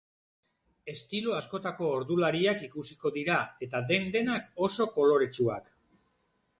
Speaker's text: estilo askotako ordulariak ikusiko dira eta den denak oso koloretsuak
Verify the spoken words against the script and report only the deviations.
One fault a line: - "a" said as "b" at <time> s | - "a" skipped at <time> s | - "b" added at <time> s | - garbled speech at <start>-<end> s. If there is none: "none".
none